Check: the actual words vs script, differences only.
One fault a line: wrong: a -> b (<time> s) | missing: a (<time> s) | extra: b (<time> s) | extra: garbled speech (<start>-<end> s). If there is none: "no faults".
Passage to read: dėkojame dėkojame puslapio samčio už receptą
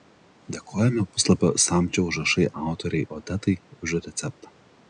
missing: dėkojame (1.0 s)
extra: užrašai autorei odetai (2.1 s)